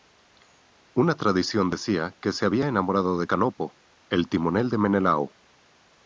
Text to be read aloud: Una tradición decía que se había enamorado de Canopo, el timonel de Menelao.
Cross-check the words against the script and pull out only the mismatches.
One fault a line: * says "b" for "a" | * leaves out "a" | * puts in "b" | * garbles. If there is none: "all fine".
all fine